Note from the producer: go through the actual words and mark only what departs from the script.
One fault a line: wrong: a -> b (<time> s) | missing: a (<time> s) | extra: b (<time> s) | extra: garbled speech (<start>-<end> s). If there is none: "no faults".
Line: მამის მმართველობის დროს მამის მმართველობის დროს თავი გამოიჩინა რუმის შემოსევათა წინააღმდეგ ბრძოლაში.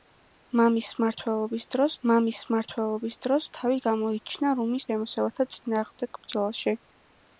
no faults